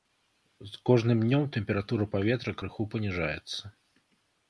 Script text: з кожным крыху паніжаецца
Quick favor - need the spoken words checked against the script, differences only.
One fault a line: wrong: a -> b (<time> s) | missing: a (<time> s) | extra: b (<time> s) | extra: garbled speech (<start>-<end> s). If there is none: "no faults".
extra: днём тэмпература паветра (1.3 s)